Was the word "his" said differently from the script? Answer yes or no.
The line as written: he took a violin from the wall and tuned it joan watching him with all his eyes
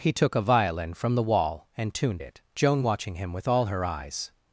yes